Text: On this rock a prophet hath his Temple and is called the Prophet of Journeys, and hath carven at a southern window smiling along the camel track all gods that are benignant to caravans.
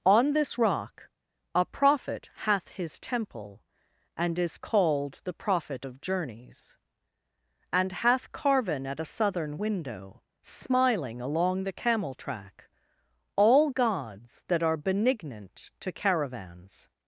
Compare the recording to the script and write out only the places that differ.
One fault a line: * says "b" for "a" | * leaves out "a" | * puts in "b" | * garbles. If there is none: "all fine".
all fine